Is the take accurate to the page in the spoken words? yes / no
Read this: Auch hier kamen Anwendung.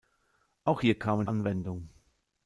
yes